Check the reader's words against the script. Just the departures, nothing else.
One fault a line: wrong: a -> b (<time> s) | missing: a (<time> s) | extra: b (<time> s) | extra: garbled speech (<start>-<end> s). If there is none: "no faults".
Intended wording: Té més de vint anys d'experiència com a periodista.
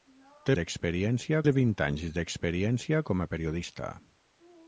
wrong: més -> d'experiència (0.6 s)